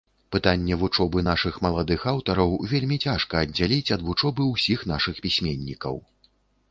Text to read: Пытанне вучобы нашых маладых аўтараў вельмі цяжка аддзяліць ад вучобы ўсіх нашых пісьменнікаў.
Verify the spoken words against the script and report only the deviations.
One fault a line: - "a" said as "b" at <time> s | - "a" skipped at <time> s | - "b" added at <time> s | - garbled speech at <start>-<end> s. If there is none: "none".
none